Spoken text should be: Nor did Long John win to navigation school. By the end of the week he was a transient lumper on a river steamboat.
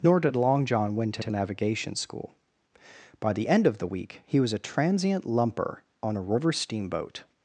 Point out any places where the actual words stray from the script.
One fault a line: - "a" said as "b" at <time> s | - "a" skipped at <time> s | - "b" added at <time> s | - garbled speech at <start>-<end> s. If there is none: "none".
- "to" added at 1.2 s